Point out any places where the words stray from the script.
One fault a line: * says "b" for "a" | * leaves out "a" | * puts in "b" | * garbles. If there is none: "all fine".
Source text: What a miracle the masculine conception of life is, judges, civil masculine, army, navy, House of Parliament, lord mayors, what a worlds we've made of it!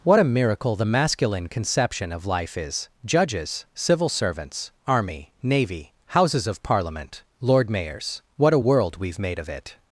* says "servants" for "masculine"
* says "Houses" for "House"
* says "world" for "worlds"